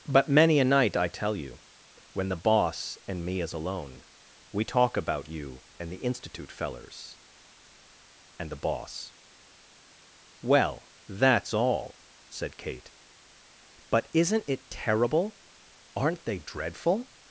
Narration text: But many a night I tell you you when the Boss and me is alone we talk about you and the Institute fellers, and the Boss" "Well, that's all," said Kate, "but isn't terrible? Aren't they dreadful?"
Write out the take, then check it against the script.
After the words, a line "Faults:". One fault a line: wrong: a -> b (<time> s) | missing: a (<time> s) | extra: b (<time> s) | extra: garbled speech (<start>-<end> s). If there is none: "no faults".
But many a night I tell you when the Boss and me is alone we talk about you and the Institute fellers, and the Boss" "Well, that's all," said Kate, "but isn't it terrible? Aren't they dreadful?"
Faults:
missing: you (1.6 s)
extra: it (14.5 s)